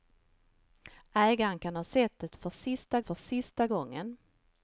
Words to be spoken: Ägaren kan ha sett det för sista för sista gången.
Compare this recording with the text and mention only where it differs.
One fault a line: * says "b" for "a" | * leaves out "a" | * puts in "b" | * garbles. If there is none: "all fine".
all fine